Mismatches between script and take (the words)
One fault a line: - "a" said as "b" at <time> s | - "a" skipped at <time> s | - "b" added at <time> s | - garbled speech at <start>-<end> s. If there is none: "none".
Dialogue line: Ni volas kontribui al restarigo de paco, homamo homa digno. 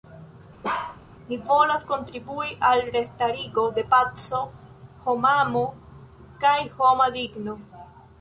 - "kaj" added at 6.4 s